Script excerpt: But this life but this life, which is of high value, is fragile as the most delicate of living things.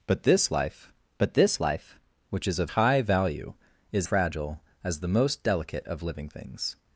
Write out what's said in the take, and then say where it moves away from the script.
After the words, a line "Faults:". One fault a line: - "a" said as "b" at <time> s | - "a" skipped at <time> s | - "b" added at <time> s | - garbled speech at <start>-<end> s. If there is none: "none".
But this life but this life, which is of high value, is fragile as the most delicate of living things.
Faults:
none